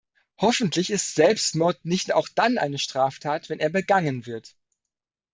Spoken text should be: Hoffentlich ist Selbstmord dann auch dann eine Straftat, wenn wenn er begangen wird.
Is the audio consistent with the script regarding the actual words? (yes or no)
no